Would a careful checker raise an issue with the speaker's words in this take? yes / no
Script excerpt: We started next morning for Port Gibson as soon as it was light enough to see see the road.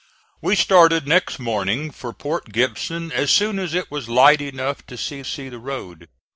no